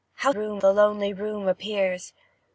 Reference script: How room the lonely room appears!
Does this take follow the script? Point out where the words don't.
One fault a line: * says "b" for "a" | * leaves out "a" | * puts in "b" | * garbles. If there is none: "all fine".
all fine